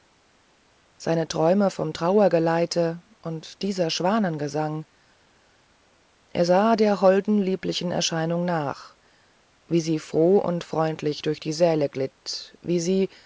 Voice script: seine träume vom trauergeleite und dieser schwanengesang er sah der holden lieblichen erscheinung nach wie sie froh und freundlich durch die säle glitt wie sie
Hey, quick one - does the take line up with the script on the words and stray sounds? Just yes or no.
yes